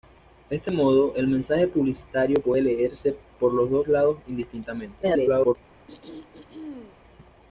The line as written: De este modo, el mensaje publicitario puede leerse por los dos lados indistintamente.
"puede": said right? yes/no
yes